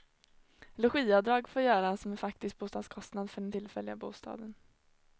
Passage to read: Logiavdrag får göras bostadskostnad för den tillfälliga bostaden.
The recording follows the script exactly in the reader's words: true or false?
false